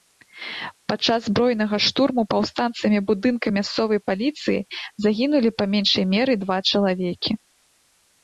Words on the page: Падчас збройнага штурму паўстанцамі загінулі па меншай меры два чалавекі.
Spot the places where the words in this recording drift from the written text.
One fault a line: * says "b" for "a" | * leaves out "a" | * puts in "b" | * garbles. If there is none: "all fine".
* puts in "будынка мясцовай паліцыі"